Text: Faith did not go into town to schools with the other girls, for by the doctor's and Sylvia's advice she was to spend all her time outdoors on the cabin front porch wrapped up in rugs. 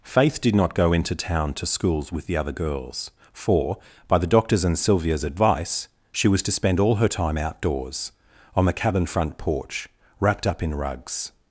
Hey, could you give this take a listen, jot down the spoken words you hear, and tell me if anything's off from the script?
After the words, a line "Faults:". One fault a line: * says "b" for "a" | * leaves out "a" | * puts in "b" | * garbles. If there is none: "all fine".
Faith did not go into town to schools with the other girls, for by the doctor's and Sylvia's advice she was to spend all her time outdoors on the cabin front porch wrapped up in rugs.
Faults:
all fine